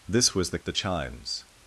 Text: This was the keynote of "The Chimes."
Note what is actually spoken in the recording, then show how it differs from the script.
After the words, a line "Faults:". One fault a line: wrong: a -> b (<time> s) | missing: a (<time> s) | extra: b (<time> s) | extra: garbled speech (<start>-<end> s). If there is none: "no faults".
This was the "The Chimes."
Faults:
missing: keynote of (0.6 s)